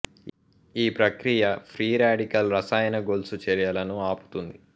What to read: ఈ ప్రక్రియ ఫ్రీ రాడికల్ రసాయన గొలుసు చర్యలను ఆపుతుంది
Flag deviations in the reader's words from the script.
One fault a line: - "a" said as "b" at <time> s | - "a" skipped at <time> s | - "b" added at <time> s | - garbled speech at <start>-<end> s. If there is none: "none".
none